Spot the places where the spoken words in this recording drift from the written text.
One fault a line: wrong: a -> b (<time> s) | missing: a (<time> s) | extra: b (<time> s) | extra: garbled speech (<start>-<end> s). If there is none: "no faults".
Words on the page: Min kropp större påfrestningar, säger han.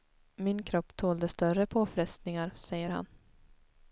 extra: tålde (1.0 s)